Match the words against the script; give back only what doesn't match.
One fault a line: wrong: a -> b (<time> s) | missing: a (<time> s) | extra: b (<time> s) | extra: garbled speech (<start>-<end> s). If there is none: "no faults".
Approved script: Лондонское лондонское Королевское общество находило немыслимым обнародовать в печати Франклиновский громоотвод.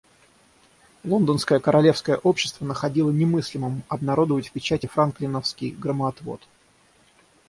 missing: лондонское (1.6 s)